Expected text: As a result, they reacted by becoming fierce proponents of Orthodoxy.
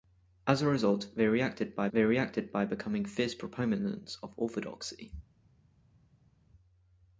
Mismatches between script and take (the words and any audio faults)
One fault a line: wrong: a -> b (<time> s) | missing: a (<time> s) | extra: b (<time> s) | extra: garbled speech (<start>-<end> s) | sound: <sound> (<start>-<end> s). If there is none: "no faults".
extra: they reacted by (1.9 s)